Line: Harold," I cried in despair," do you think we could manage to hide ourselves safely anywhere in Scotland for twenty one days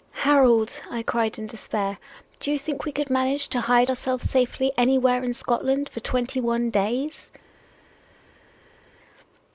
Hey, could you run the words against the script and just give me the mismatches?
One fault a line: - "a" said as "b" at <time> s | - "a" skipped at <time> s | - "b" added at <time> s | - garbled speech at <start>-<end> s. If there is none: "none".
none